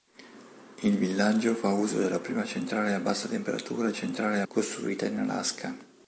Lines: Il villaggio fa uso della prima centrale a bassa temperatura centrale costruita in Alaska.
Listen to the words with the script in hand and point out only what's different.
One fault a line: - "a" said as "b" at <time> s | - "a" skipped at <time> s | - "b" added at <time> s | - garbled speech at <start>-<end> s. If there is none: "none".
none